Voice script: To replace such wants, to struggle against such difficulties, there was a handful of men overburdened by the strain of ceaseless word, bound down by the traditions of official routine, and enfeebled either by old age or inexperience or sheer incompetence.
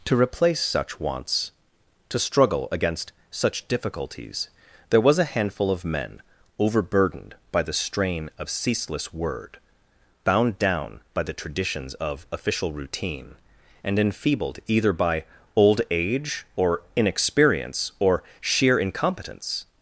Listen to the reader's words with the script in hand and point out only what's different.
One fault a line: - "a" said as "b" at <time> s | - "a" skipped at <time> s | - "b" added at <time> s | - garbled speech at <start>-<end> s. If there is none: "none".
none